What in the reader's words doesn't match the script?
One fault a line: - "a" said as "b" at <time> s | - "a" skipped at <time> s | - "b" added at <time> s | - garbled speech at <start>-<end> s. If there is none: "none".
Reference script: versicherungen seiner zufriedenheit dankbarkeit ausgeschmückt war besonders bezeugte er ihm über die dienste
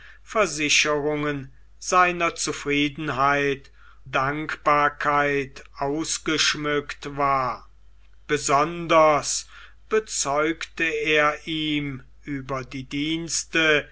none